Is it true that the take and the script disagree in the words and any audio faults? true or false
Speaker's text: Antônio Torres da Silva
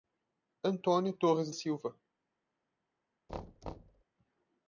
true